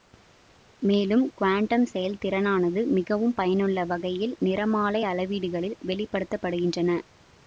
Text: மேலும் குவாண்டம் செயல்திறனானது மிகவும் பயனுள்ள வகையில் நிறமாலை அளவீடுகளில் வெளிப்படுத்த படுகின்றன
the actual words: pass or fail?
pass